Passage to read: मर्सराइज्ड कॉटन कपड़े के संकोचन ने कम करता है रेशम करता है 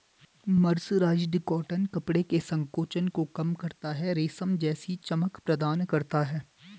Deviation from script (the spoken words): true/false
true